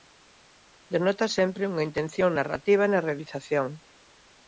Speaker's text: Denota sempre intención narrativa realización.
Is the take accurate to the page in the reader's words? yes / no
no